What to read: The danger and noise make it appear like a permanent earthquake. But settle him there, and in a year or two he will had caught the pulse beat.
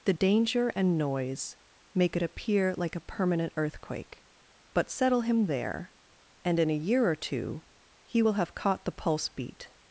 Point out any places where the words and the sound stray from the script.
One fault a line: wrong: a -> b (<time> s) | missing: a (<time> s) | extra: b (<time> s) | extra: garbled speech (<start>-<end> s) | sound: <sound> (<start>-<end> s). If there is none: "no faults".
wrong: had -> have (8.3 s)